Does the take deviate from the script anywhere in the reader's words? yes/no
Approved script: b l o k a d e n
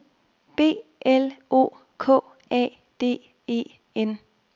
no